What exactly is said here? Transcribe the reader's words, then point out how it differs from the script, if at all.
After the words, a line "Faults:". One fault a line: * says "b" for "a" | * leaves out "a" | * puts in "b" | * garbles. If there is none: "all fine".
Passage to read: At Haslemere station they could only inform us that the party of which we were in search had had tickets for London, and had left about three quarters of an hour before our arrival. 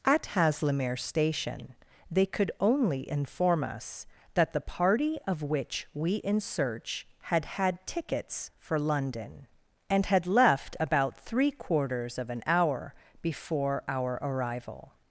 At Haslemere station they could only inform us that the party of which we in search had had tickets for London, and had left about three quarters of an hour before our arrival.
Faults:
* leaves out "were"